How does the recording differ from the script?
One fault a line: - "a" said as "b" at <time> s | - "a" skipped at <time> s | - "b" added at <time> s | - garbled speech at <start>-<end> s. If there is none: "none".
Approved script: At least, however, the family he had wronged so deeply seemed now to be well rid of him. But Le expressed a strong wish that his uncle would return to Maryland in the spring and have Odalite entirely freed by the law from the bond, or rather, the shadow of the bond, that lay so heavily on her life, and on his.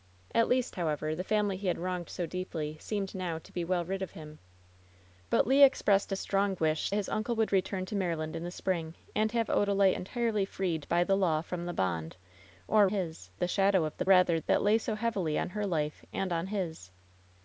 - "that" skipped at 6.9 s
- "rather" said as "his" at 12.9 s
- "bond" said as "rather" at 14.0 s